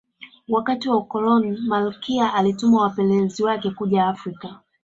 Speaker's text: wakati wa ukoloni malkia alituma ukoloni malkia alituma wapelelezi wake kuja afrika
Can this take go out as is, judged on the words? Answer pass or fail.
fail